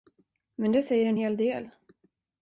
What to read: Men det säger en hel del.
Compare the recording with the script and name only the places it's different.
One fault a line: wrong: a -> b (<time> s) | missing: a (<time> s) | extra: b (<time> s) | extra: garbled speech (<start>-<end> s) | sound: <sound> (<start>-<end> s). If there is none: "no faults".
no faults